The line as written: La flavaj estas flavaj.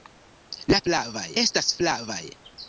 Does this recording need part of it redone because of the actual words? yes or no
no